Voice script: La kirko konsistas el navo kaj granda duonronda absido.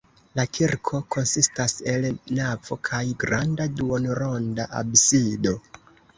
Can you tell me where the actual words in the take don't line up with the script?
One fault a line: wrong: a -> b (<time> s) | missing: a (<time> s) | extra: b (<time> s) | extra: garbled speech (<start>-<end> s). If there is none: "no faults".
no faults